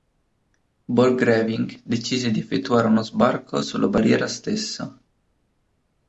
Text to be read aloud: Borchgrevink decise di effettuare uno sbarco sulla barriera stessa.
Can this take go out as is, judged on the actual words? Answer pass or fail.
pass